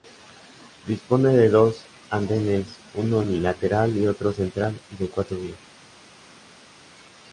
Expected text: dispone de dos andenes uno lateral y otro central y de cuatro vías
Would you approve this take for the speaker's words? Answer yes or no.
yes